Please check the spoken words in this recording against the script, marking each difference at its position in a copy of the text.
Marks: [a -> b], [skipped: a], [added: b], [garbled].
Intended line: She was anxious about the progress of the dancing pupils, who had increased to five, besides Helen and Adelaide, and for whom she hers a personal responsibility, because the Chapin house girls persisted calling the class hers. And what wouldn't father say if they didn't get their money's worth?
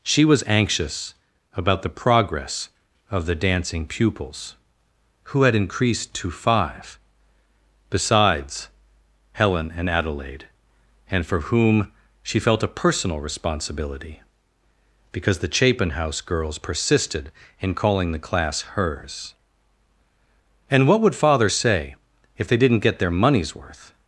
She was anxious about the progress of the dancing pupils, who had increased to five, besides Helen and Adelaide, and for whom she [hers -> felt] a personal responsibility, because the Chapin house girls persisted [added: in] calling the class hers. And what [wouldn't -> would] father say if they didn't get their money's worth?